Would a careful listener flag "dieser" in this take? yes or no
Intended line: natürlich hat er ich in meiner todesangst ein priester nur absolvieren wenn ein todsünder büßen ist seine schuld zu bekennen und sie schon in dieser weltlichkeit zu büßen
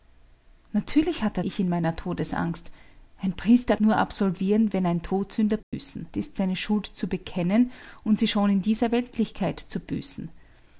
no